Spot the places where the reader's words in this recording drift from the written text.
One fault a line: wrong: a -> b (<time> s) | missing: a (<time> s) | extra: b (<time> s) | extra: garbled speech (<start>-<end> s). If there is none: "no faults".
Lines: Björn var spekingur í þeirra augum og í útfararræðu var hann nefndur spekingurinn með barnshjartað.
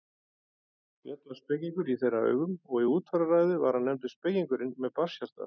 no faults